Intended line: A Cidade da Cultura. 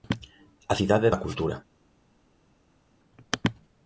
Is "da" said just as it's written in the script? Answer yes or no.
yes